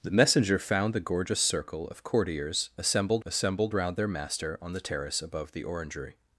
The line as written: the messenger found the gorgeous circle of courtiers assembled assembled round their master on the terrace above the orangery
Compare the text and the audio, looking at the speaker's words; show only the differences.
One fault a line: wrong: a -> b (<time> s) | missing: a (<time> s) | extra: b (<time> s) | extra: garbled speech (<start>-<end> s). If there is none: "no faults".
no faults